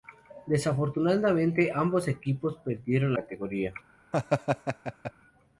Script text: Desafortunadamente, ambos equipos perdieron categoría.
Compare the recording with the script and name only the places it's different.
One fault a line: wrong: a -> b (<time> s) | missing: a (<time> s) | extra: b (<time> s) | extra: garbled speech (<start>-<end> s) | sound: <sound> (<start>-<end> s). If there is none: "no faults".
sound: laugh (4.1-5.1 s)